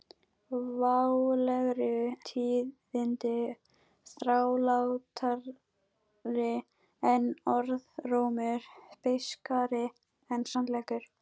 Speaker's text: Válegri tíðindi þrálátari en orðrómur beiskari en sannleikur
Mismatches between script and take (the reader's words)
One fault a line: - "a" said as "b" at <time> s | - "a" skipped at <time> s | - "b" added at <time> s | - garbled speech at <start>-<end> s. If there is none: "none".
none